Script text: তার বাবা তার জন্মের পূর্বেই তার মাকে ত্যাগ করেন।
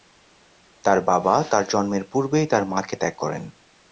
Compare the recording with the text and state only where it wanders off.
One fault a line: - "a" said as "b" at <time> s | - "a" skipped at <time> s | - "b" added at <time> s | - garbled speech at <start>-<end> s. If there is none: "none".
none